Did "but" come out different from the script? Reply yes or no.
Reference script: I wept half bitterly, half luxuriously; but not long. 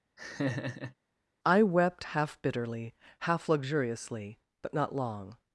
no